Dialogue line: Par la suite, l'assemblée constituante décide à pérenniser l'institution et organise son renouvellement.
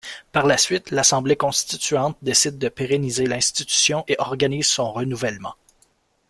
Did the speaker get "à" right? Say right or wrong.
wrong